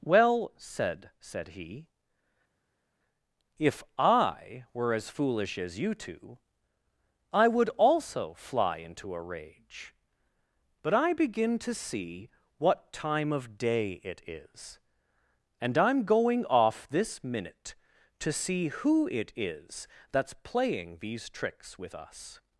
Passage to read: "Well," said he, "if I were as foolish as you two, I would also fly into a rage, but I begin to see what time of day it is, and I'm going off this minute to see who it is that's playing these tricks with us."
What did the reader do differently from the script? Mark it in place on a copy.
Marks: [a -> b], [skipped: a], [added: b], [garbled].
"Well," said [added: said] he, "if I were as foolish as you two, I would also fly into a rage, but I begin to see what time of day it is, and I'm going off this minute to see who it is that's playing these tricks with us."